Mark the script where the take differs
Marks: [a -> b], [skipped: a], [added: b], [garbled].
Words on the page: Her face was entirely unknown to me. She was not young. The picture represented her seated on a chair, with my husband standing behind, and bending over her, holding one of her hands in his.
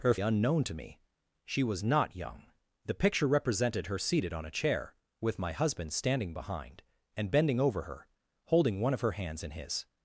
Her [skipped: face was entirely] unknown to me. She was not young. The picture represented her seated on a chair, with my husband standing behind, and bending over her, holding one of her hands in his.